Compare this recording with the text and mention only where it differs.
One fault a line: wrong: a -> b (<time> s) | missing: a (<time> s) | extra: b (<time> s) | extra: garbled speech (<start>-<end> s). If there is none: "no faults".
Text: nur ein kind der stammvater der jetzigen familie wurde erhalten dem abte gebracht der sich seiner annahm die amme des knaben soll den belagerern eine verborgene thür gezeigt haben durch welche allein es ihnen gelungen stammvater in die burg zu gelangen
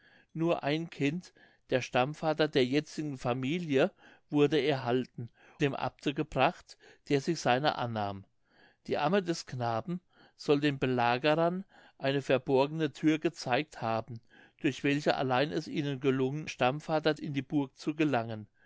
no faults